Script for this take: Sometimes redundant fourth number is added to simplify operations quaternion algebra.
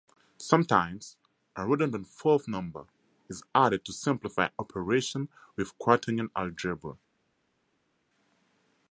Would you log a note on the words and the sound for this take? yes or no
yes